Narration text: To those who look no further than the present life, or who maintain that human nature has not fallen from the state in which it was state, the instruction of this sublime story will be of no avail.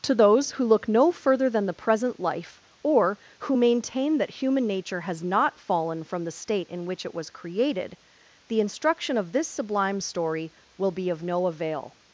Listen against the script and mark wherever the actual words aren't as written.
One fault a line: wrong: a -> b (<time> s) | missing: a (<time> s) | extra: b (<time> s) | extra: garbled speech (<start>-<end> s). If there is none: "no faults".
wrong: state -> created (7.3 s)